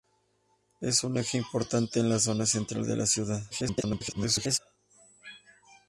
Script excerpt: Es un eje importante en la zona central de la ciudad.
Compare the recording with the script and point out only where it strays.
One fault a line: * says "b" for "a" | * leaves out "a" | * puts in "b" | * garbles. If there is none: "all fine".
* garbles